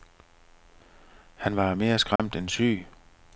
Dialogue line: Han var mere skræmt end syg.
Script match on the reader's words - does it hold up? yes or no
yes